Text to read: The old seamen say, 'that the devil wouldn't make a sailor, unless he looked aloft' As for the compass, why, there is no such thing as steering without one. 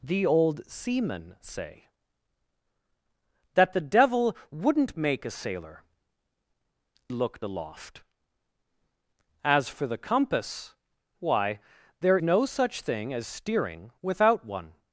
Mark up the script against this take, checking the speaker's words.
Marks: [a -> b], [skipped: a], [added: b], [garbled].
The old seamen say, 'that the devil wouldn't make a sailor, [skipped: unless he] looked aloft' As for the compass, why, there [skipped: is] no such thing as steering without one.